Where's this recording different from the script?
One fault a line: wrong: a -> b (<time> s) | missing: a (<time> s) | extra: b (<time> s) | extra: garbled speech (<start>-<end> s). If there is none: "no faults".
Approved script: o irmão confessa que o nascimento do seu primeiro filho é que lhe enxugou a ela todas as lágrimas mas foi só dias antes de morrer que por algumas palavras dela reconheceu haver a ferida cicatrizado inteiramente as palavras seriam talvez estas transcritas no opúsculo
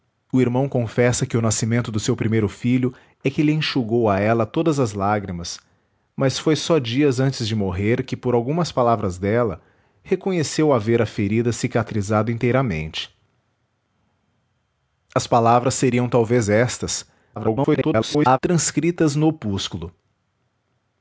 extra: garbled speech (17.4-18.4 s)